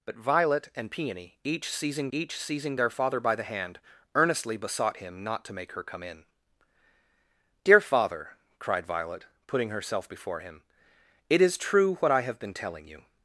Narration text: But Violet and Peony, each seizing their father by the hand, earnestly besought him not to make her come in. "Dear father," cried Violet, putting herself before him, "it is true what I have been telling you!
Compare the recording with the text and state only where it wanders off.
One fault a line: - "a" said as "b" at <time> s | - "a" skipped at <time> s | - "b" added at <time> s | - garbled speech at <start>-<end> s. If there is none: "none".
- "each seizing" added at 2.1 s